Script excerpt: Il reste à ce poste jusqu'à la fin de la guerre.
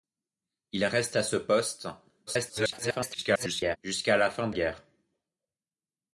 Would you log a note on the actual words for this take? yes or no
yes